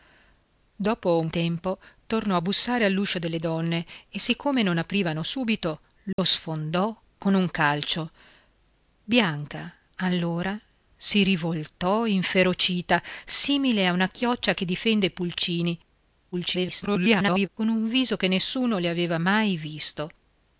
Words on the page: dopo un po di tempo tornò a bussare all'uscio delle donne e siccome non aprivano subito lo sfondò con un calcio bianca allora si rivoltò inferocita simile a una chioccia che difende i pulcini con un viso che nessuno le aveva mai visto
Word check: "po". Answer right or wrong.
wrong